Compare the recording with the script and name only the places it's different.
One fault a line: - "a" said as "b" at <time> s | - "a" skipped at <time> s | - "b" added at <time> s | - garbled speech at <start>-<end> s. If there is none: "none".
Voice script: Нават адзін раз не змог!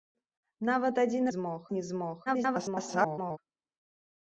- "раз" said as "змог" at 1.4 s
- garbled speech at 2.3-3.4 s